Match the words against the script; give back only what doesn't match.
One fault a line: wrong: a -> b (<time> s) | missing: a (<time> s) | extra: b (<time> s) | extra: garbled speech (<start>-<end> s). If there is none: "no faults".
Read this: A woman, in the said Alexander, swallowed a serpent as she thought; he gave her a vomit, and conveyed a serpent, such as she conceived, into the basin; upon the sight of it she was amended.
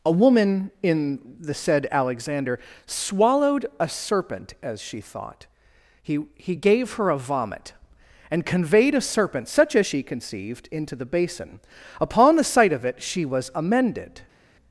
extra: he (6.4 s)